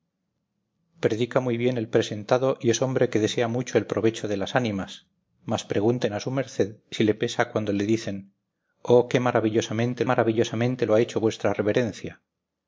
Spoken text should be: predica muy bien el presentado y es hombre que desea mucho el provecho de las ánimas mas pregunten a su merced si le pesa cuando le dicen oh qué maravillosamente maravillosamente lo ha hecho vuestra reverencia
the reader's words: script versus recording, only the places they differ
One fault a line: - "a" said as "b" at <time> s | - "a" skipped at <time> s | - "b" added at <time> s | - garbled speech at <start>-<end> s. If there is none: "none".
none